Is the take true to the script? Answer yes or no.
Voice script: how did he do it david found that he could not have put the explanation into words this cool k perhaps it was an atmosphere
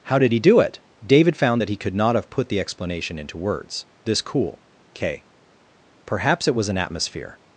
yes